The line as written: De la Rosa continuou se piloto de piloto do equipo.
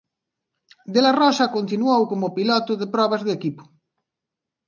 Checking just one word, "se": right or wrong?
wrong